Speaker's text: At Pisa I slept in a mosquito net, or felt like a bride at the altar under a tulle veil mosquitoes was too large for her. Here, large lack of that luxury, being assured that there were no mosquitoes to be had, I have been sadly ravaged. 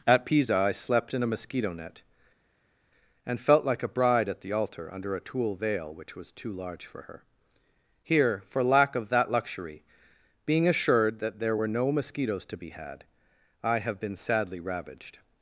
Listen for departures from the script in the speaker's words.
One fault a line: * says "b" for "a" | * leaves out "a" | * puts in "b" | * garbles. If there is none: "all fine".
* says "and" for "or"
* says "which" for "mosquitoes"
* says "for" for "large"